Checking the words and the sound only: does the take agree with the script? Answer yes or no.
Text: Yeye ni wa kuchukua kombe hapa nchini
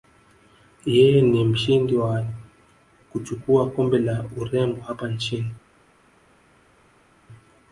no